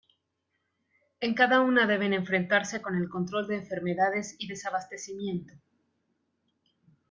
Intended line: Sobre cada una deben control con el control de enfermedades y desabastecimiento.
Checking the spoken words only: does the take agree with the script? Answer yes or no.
no